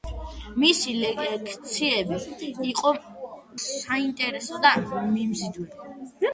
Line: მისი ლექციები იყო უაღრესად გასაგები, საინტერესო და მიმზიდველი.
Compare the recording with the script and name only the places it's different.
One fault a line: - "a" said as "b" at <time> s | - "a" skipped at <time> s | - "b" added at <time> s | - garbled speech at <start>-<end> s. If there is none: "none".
- "უაღრესად გასაგები" skipped at 2.9 s